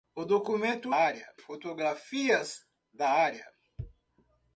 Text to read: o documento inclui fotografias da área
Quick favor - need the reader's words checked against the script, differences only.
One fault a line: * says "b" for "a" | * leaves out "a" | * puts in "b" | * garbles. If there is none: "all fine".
* says "área" for "inclui"